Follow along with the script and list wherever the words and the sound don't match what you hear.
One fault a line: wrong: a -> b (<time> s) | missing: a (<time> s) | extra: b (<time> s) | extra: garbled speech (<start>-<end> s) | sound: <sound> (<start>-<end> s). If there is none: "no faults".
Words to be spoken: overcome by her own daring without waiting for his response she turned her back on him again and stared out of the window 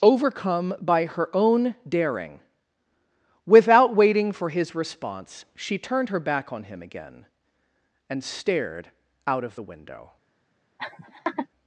sound: laugh (10.8-11.5 s)